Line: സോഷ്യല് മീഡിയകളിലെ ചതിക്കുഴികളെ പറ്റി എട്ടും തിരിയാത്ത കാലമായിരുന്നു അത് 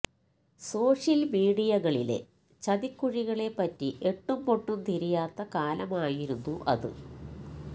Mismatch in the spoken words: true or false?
true